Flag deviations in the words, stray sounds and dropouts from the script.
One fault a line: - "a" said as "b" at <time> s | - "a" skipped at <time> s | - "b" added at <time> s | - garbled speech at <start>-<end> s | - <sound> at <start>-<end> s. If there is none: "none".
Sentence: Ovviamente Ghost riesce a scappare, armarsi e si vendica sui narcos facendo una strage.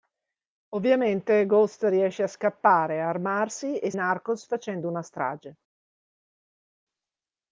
- "si vendica sui" skipped at 3.9 s